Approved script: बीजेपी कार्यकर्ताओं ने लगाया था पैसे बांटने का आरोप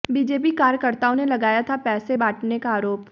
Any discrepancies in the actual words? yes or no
no